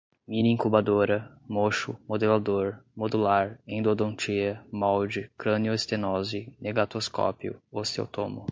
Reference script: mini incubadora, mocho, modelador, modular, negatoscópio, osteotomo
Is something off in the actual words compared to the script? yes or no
yes